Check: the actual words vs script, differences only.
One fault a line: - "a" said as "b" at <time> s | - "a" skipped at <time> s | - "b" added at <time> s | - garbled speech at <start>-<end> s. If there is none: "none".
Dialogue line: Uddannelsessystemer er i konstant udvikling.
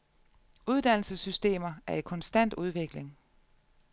none